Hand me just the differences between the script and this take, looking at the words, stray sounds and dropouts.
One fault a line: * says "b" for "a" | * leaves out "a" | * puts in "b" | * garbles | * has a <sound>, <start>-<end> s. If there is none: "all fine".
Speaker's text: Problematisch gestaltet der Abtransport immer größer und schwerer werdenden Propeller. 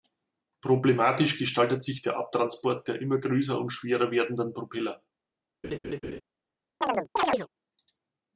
* puts in "sich"
* puts in "der"
* has a laugh, 5.6-6.2 s
* has a chirp, 6.8-7.5 s